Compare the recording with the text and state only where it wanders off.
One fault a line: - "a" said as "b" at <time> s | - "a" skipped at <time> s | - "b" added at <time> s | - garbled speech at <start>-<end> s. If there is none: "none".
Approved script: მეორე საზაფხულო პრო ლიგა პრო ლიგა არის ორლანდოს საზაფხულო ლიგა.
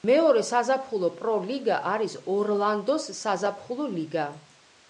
- "პრო ლიგა" skipped at 1.8 s